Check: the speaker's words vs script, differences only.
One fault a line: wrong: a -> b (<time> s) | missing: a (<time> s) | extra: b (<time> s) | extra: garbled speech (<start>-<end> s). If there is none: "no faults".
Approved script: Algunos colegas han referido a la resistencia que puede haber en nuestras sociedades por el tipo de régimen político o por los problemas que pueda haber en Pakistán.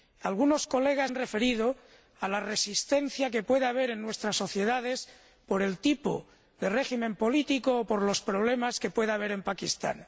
no faults